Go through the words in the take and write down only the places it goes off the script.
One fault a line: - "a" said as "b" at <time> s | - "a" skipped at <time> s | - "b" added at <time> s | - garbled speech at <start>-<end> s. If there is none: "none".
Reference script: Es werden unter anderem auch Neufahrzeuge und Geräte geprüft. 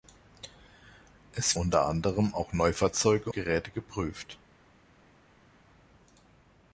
- "werden" skipped at 1.6 s
- "und" skipped at 3.3 s